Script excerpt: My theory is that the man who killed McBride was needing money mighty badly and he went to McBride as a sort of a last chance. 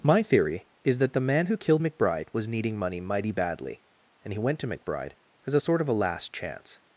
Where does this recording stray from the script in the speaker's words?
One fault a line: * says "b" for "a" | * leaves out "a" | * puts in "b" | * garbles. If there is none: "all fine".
all fine